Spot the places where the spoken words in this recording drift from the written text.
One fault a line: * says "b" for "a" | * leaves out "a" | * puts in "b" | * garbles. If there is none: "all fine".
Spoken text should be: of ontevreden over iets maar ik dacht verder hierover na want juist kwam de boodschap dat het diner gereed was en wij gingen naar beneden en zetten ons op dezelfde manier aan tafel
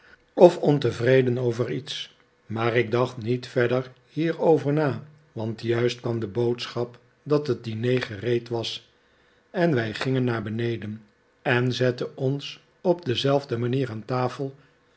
* puts in "niet"